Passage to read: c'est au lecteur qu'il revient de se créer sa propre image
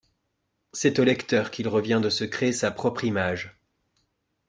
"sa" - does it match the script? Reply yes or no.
yes